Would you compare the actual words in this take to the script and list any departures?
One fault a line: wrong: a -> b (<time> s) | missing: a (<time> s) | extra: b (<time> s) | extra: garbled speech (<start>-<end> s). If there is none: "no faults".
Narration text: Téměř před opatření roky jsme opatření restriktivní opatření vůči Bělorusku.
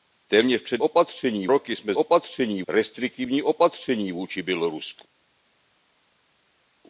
no faults